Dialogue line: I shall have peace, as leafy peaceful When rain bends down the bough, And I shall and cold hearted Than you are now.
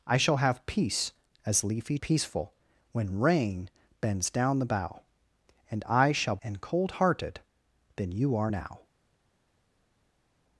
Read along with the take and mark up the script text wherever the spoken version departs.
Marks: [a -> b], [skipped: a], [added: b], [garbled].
I shall have peace, as leafy peaceful When rain bends down the bough, And I shall and cold hearted Than you are now.